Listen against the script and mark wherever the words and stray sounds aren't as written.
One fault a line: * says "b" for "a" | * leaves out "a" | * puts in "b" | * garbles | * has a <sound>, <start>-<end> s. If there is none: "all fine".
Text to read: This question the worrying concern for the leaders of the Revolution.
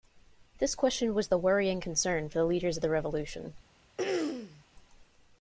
* puts in "was"
* has a throat clearing, 4.0-4.6 s